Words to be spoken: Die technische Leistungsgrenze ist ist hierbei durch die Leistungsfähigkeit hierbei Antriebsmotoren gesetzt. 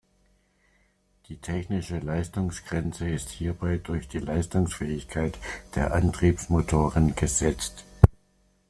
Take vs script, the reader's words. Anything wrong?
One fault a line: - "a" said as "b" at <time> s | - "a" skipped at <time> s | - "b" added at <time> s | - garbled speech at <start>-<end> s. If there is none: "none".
- "ist" skipped at 3.3 s
- "hierbei" said as "der" at 5.8 s